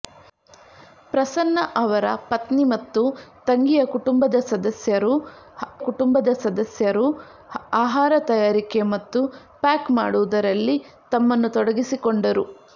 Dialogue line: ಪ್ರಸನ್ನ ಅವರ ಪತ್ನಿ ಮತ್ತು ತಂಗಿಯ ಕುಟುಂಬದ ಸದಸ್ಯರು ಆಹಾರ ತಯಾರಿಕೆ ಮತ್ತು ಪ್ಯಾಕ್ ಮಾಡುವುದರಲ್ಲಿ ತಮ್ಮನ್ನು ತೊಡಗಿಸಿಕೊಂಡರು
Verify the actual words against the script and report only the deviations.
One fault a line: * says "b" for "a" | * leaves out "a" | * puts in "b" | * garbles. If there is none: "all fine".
* puts in "ಕುಟುಂಬದ ಸದಸ್ಯರು"